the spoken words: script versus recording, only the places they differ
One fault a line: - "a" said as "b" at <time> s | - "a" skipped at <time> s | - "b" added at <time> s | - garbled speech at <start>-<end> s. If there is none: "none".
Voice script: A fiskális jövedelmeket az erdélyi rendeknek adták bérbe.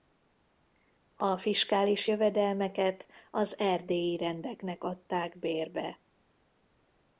none